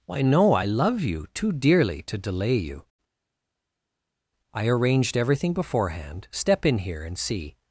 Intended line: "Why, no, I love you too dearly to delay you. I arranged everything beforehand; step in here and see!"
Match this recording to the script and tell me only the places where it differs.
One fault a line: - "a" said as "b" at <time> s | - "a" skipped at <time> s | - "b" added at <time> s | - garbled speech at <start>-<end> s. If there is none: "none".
none